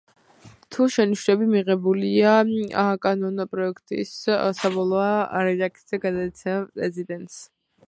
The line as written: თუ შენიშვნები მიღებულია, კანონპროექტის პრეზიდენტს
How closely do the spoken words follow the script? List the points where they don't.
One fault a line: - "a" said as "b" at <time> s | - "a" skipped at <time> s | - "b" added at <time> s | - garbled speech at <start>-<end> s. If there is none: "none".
- "საბოლოო რედაქცია გადაეცემა" added at 4.6 s